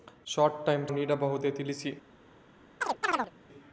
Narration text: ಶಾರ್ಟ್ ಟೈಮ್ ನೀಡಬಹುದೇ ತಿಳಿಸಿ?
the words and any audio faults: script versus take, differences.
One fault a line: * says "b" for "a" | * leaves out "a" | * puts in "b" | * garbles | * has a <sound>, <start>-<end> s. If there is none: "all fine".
* has a chirp, 2.8-3.3 s